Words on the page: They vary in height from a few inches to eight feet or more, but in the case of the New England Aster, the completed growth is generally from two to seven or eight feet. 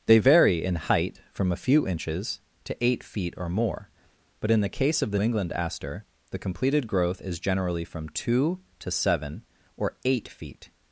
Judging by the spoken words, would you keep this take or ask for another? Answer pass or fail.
fail